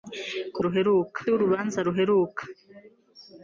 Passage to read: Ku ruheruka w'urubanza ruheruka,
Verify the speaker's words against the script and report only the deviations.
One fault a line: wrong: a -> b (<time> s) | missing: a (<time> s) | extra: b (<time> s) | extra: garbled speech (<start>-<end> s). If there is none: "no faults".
no faults